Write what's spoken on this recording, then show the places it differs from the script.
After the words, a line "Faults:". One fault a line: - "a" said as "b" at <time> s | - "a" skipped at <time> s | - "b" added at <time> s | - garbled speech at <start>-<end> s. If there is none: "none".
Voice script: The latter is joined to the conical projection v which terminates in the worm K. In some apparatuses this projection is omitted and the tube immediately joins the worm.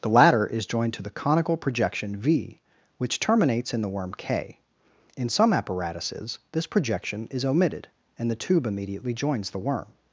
The latter is joined to the conical projection v which terminates in the worm K. In some apparatuses this projection is omitted and the tube immediately joins the worm.
Faults:
none